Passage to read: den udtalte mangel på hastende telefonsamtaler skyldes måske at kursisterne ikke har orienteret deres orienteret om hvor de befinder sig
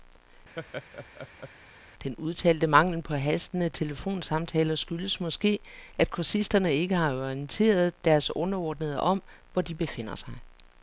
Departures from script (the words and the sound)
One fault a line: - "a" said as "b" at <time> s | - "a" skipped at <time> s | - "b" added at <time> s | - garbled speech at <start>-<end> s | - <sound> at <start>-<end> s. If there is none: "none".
- laugh at 0.6-1.5 s
- "orienteret" said as "underordnede" at 8.4 s